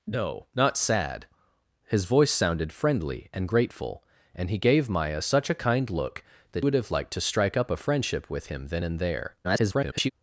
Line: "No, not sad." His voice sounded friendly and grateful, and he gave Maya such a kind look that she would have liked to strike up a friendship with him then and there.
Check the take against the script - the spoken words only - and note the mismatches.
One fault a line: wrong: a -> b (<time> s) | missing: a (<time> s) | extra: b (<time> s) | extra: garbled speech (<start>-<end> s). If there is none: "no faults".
missing: she (6.7 s)
extra: garbled speech (9.4-10.1 s)